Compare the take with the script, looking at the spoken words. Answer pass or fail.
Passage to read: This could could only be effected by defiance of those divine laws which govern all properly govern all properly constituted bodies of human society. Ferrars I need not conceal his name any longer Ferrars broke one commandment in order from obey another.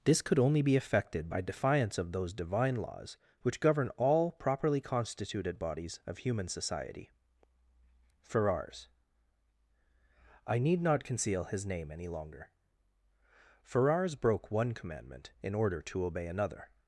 fail